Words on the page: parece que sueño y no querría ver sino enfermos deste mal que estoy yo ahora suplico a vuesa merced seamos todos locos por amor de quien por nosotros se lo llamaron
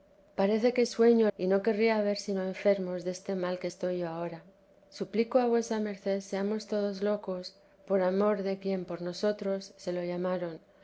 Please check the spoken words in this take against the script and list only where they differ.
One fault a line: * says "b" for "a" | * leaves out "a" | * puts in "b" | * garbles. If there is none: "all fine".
all fine